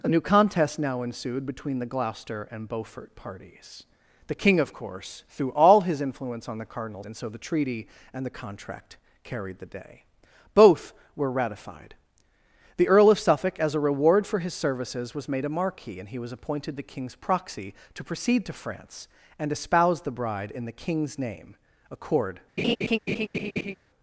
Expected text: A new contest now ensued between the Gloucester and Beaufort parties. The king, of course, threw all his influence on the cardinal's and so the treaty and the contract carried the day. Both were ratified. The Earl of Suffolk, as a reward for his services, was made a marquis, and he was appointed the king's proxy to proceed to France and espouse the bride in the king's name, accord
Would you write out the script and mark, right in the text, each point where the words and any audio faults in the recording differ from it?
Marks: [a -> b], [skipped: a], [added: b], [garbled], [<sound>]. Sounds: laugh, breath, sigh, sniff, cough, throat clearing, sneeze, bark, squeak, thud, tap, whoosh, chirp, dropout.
A new contest now ensued between the Gloucester and Beaufort parties. The king, of course, threw all his influence on the cardinal's and so the treaty and the contract carried the day. Both were ratified. The Earl of Suffolk, as a reward for his services, was made a marquis, and he was appointed the king's proxy to proceed to France and espouse the bride in the king's name, accord [laugh]